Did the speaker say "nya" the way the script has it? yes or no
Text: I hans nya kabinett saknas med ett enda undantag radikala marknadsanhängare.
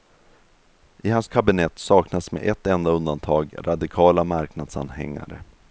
no